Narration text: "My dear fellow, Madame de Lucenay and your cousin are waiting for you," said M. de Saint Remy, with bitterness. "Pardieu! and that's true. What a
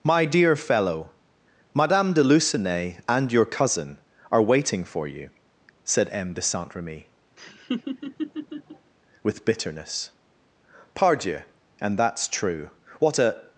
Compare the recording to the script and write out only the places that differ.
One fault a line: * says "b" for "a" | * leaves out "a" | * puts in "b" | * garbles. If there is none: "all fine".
all fine